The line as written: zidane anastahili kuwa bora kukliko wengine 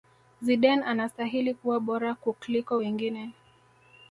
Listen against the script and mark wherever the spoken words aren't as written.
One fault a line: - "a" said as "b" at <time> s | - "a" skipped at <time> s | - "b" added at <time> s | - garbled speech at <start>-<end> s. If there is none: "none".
none